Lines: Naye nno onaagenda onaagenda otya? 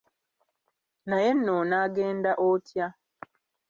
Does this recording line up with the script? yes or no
no